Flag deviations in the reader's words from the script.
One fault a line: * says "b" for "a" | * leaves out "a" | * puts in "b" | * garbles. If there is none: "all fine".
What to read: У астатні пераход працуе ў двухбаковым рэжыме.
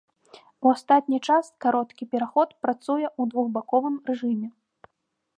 * puts in "час кароткі"